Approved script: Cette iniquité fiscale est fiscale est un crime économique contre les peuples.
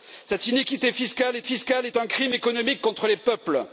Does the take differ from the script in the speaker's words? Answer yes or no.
no